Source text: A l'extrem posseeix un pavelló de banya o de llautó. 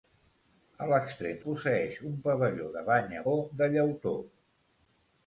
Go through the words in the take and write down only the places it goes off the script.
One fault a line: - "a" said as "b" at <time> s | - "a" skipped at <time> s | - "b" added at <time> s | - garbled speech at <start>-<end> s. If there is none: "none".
none